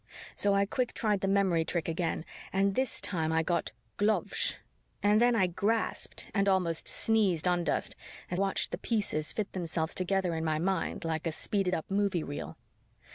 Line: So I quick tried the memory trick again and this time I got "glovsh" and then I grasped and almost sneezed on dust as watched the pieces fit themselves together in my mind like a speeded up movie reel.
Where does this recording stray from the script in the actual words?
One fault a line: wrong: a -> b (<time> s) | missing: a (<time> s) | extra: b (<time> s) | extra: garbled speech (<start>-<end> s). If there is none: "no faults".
no faults